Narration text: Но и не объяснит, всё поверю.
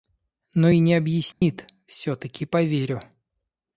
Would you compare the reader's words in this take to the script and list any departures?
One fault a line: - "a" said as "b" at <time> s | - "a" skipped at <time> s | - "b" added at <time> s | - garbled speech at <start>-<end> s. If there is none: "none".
- "таки" added at 2.1 s